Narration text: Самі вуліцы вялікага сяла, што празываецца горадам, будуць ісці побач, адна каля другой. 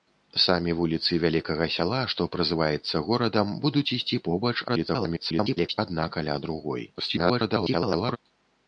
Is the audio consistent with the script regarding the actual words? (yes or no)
no